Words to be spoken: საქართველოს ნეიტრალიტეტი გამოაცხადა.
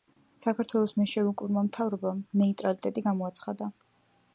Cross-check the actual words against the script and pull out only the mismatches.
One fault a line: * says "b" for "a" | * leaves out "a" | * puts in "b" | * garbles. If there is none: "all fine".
* puts in "მენშევიკურმა მთავრობამ"